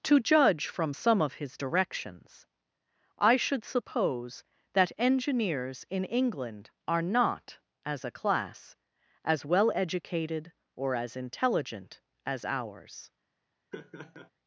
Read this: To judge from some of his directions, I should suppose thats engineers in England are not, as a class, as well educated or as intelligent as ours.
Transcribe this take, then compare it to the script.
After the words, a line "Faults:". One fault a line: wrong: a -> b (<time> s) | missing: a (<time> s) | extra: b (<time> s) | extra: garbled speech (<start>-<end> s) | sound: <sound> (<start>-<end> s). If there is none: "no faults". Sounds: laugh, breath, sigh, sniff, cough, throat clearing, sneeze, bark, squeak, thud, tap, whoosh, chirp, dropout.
To judge from some of his directions, I should suppose that engineers in England are not, as a class, as well educated or as intelligent as ours.
Faults:
wrong: thats -> that (4.7 s)
sound: laugh (13.7-14.3 s)